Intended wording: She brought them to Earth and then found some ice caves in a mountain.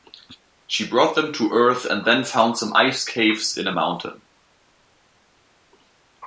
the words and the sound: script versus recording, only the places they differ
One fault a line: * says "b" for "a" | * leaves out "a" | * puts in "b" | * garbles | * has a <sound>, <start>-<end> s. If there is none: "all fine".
all fine